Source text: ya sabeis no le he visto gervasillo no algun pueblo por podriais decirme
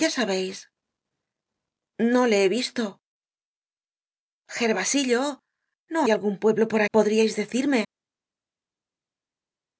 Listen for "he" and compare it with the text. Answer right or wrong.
right